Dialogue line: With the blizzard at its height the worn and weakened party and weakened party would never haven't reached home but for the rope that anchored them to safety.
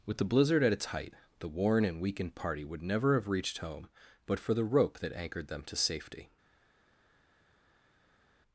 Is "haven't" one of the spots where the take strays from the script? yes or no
yes